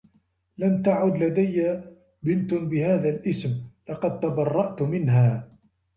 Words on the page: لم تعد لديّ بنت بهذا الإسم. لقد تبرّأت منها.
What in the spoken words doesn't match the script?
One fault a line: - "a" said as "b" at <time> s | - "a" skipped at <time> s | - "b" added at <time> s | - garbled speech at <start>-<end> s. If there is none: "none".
none